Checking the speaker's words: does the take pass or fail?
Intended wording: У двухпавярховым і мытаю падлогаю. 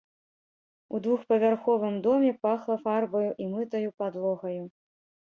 fail